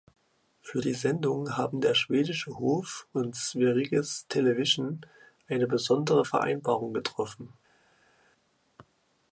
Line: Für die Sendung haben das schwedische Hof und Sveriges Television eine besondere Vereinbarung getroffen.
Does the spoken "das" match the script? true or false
false